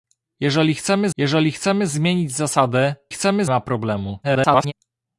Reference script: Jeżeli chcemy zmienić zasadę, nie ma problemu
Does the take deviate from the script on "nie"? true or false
true